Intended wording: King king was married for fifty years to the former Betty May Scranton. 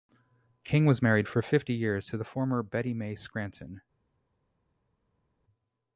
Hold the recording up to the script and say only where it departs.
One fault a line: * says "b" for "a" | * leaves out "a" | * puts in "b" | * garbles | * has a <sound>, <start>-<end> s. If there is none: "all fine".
* leaves out "king"